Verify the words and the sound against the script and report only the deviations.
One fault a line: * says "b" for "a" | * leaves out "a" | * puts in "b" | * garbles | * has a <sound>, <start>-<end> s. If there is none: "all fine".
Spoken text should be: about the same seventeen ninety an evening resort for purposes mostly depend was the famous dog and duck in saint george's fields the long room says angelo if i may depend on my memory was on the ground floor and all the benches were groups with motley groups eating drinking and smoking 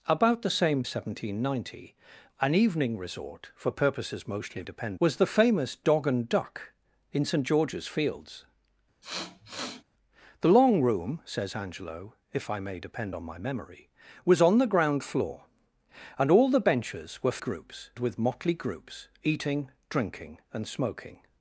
* has a sniff, 9.0-9.8 s